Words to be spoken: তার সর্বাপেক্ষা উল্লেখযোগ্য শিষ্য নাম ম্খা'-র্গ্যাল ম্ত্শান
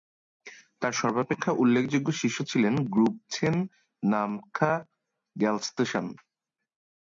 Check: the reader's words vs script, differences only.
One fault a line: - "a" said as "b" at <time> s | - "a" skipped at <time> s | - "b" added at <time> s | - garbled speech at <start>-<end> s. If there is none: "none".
- "ছিলেন গ্রুব ছেন" added at 2.4 s